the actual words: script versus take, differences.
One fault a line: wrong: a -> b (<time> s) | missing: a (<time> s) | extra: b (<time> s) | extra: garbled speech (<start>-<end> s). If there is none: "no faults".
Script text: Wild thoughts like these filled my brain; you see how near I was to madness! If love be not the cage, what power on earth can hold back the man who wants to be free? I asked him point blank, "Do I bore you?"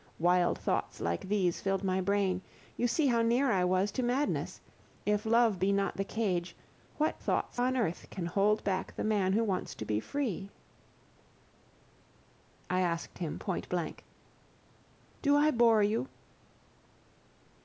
wrong: power -> thoughts (7.2 s)